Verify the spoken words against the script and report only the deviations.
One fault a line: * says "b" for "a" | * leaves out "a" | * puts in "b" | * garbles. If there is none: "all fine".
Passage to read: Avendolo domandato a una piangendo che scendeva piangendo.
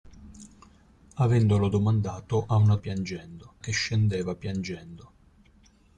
all fine